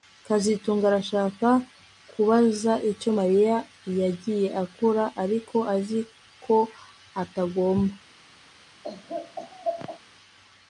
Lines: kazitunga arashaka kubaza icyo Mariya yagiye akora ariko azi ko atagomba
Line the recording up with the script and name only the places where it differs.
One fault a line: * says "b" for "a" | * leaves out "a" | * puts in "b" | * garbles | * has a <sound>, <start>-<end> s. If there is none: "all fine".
* has a laugh, 8.8-10.0 s